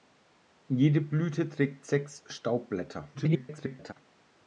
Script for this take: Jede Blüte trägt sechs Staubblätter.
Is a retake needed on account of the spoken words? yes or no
yes